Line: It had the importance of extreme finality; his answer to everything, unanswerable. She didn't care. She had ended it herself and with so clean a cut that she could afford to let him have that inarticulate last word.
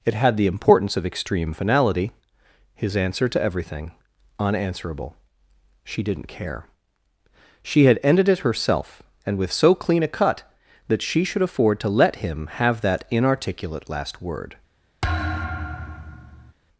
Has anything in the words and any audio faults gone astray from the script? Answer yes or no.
yes